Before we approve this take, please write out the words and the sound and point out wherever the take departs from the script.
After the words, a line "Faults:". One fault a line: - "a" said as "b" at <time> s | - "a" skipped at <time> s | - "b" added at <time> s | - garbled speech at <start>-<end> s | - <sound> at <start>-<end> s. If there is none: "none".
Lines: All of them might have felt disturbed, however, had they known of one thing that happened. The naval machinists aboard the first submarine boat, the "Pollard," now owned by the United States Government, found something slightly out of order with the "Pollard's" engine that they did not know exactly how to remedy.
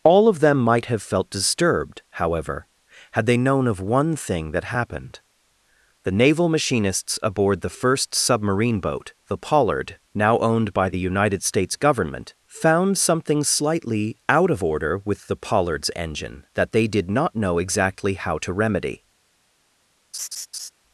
All of them might have felt disturbed, however, had they known of one thing that happened. The naval machinists aboard the first submarine boat, the "Pollard," now owned by the United States Government, found something slightly out of order with the "Pollard's" engine that they did not know exactly how to remedy.
Faults:
- laugh at 20.1-20.7 s